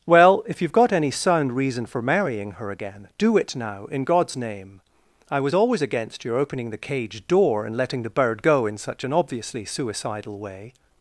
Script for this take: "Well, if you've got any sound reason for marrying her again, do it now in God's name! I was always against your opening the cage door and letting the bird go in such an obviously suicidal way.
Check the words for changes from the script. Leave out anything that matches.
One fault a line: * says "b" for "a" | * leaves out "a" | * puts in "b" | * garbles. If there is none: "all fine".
all fine